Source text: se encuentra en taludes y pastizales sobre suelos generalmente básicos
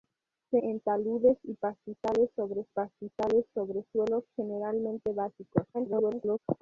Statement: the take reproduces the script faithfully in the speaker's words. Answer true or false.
false